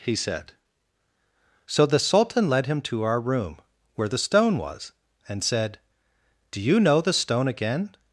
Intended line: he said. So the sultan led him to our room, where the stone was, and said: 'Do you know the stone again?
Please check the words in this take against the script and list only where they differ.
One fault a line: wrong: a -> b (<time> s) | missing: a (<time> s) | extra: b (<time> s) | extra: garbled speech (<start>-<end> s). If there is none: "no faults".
no faults